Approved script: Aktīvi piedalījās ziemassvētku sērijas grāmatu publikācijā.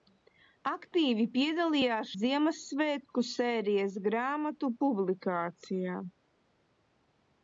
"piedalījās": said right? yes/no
yes